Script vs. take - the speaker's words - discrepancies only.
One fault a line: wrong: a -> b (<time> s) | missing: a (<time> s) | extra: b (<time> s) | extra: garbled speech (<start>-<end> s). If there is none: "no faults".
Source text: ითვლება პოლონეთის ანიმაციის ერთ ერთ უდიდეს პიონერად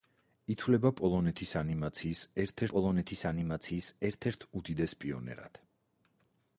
extra: პოლონეთის ანიმაციის ერთ (2.7 s)